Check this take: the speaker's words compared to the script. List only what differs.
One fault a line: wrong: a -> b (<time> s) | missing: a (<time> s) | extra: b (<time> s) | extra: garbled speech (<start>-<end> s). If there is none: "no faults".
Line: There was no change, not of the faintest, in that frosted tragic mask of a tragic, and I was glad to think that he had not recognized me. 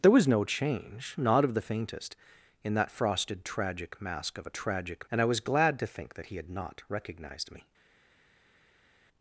no faults